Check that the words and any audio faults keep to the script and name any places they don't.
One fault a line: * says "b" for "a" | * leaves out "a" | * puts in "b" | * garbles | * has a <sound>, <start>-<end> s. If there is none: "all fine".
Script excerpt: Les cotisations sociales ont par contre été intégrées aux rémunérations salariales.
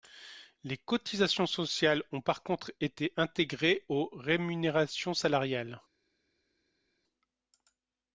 all fine